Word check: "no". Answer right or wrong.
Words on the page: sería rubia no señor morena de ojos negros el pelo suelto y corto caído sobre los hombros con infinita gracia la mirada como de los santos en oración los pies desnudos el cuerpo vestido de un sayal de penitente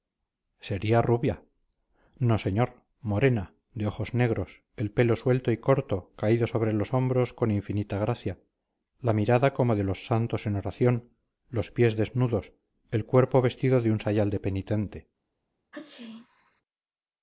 right